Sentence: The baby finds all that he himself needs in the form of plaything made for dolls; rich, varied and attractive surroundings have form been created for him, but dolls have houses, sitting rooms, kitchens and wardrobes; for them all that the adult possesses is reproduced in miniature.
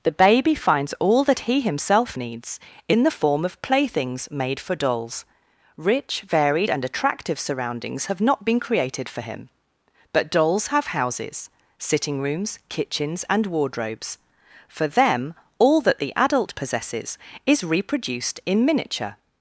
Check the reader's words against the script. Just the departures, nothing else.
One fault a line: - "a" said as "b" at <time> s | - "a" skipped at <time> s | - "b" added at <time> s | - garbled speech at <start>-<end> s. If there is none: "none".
- "plaything" said as "playthings" at 3.6 s
- "form" said as "not" at 8.2 s